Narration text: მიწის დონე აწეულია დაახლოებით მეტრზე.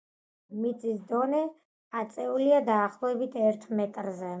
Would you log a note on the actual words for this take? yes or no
yes